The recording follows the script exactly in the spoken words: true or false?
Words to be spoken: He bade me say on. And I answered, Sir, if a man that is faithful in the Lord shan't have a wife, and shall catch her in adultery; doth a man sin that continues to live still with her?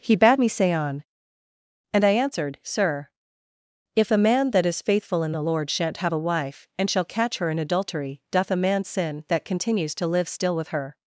true